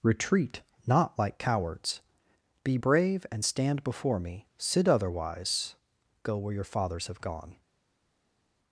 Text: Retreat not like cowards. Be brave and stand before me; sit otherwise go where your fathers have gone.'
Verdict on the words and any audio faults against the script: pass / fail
pass